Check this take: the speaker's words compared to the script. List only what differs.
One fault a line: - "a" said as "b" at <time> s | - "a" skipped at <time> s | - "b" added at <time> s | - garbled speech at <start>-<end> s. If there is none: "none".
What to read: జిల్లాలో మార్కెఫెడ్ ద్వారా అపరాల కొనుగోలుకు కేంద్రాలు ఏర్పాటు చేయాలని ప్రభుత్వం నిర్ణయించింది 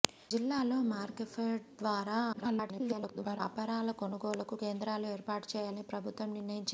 - garbled speech at 2.3-3.4 s